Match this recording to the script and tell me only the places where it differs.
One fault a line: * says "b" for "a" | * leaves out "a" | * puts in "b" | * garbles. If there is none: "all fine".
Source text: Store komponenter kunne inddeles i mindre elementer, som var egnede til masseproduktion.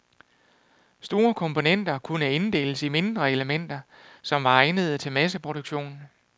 all fine